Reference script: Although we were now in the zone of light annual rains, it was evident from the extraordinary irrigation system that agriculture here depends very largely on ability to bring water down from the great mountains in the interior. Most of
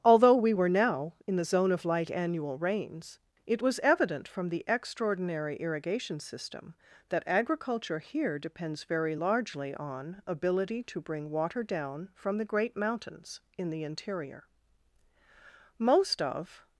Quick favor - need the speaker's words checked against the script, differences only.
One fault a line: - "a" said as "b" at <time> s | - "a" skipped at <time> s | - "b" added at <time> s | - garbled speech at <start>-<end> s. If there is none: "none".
none